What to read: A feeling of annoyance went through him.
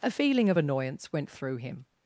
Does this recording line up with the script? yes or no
yes